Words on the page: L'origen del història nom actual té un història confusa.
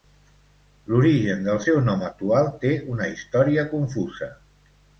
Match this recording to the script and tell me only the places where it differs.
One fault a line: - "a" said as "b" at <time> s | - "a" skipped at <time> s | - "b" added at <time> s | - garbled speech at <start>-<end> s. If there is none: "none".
- "història" said as "seu" at 1.6 s
- "un" said as "una" at 3.0 s